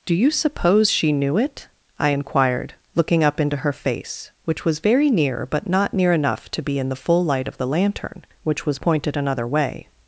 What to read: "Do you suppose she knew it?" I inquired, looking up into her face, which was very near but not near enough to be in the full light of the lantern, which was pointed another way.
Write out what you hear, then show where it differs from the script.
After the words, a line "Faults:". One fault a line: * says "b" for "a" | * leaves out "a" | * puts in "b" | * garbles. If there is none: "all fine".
"Do you suppose she knew it?" I inquired, looking up into her face, which was very near but not near enough to be in the full light of the lantern, which was pointed another way.
Faults:
all fine